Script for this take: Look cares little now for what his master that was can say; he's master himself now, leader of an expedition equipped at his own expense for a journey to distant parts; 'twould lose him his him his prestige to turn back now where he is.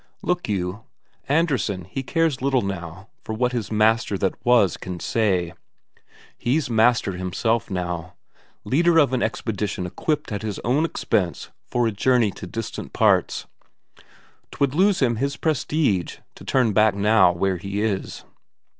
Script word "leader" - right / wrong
right